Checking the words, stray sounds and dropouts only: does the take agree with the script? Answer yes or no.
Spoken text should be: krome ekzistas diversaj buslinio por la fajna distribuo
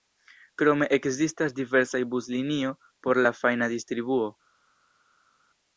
yes